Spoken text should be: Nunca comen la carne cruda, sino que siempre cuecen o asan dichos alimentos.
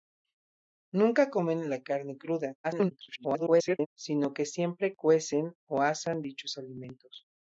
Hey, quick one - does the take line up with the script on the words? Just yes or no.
no